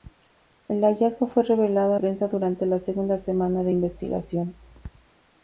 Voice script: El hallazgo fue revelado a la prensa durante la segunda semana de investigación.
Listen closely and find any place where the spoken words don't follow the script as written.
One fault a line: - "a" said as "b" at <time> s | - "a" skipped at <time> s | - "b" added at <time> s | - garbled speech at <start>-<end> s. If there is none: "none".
- "la" skipped at 2.0 s